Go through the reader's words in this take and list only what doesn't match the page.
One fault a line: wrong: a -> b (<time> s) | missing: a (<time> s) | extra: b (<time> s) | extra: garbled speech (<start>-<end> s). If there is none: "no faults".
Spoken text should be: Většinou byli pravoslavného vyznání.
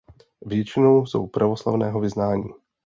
wrong: byli -> jsou (1.0 s)